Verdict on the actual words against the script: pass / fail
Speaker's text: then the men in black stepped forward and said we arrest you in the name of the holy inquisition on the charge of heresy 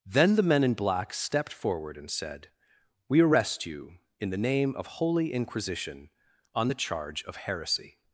fail